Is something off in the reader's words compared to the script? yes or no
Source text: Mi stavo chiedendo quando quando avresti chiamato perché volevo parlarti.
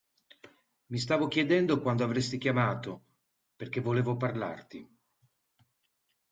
yes